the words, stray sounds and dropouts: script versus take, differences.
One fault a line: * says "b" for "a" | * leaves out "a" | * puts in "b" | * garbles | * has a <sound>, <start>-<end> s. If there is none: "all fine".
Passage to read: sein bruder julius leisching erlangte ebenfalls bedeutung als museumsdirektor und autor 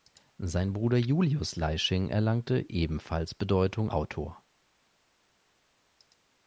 * leaves out "als museumsdirektor und"